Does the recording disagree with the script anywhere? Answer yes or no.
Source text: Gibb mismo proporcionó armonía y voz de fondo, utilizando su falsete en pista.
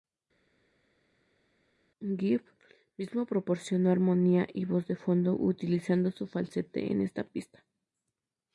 yes